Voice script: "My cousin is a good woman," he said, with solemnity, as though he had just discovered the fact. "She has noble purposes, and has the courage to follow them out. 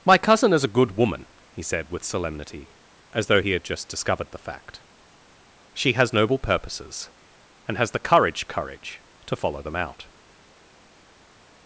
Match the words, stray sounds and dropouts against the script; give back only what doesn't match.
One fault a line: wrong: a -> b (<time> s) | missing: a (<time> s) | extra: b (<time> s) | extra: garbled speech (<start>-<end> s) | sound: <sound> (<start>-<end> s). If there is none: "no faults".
extra: courage (8.5 s)